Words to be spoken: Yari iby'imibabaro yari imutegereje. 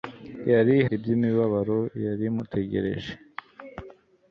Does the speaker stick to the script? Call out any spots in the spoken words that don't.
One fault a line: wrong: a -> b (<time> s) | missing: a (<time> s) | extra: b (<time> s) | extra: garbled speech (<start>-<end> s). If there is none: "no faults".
no faults